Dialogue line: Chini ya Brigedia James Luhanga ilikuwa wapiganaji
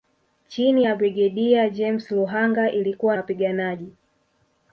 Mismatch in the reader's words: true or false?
false